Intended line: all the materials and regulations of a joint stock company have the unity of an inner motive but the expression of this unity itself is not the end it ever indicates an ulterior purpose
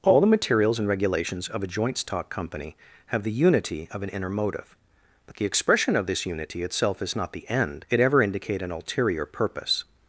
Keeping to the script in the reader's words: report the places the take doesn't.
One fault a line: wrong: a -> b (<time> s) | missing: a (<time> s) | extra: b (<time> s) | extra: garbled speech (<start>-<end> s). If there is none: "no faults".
wrong: indicates -> indicate (8.2 s)